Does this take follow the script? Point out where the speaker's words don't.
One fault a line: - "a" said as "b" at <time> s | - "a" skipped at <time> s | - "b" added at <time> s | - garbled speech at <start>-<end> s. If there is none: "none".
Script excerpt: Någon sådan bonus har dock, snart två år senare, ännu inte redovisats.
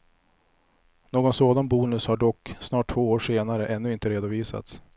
none